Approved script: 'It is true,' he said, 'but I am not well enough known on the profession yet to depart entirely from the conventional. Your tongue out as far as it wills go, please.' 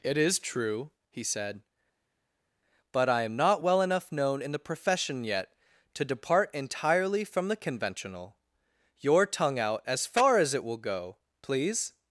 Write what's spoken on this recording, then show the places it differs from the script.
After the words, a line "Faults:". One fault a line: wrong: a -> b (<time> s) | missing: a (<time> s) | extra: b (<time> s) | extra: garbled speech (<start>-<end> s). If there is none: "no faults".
'It is true,' he said, 'but I am not well enough known in the profession yet to depart entirely from the conventional. Your tongue out as far as it will go, please.'
Faults:
wrong: on -> in (4.4 s)
wrong: wills -> will (10.6 s)